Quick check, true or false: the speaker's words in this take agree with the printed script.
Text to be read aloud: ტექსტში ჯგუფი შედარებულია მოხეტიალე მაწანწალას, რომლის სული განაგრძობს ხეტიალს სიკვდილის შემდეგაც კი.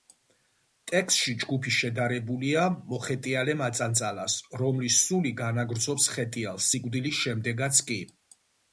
true